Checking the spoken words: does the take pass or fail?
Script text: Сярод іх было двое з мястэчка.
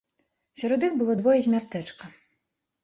pass